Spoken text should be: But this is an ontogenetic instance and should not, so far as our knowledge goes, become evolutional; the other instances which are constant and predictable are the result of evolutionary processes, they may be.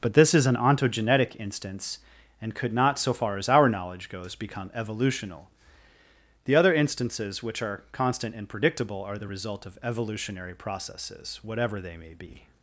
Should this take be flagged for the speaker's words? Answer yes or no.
yes